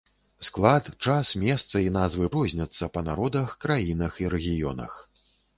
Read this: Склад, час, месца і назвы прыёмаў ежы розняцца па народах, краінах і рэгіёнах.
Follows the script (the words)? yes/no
no